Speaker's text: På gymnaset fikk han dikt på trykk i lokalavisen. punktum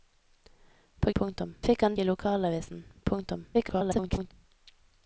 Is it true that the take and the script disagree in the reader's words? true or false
true